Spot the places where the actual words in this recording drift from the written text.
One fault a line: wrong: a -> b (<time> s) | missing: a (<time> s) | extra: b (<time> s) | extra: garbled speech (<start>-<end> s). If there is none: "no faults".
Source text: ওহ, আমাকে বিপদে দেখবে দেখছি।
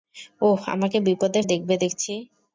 no faults